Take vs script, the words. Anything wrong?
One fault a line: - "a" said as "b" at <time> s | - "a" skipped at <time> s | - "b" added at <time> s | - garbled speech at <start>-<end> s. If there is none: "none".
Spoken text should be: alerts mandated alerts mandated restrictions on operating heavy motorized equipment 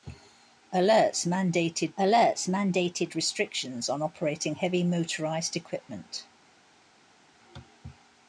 none